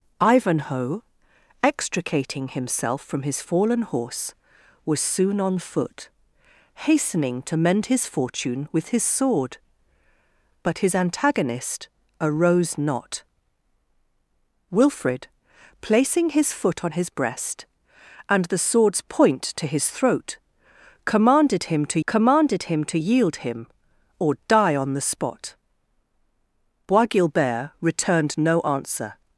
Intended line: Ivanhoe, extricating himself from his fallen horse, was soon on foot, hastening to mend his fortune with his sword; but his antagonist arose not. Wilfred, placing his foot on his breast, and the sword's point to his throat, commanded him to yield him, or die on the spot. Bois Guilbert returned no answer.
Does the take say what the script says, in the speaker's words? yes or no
no